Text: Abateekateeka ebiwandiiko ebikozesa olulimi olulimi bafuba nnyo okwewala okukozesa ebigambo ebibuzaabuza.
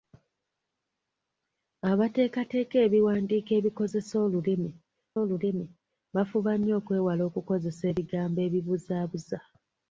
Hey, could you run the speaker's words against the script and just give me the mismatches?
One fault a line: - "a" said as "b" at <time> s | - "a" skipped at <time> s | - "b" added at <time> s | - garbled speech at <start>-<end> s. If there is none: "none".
none